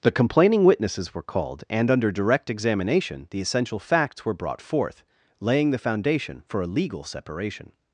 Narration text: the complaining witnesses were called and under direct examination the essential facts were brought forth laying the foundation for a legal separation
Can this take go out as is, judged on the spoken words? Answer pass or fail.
pass